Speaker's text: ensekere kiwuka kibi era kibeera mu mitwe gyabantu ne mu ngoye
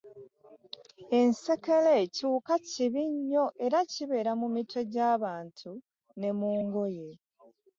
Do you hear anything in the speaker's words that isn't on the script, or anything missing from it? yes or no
yes